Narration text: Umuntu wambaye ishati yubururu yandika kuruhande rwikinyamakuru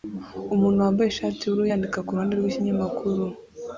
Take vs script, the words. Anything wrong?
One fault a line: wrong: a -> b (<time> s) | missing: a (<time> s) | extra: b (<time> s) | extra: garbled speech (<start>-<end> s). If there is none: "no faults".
no faults